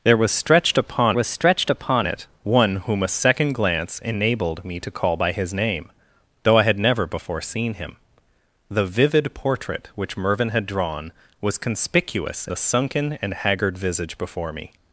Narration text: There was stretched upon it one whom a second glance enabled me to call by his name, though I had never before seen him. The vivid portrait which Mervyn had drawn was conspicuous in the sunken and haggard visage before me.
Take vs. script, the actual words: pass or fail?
fail